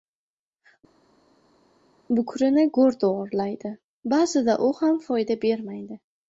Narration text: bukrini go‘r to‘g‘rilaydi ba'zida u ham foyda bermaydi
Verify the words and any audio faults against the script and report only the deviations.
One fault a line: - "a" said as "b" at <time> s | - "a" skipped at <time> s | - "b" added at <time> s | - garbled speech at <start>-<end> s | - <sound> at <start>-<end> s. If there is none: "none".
none